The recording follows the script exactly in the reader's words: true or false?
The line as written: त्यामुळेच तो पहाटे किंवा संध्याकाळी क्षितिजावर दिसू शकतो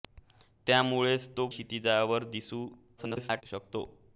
false